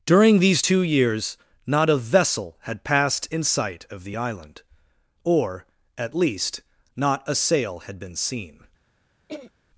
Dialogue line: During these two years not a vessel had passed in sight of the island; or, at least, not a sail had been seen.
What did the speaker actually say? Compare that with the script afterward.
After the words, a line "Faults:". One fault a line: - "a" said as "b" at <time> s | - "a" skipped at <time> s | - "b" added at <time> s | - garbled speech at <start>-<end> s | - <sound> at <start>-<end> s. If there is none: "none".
During these two years not a vessel had passed in sight of the island; or, at least, not a sail had been seen.
Faults:
- throat clearing at 9.3-9.5 s